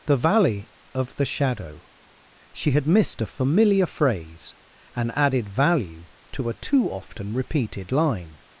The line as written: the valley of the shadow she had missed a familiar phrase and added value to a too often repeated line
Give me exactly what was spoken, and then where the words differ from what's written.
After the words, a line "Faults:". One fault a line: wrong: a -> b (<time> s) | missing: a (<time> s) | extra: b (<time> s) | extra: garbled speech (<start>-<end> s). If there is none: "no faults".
the valley of the shadow she had missed a familiar phrase and added value to a too often repeated line
Faults:
no faults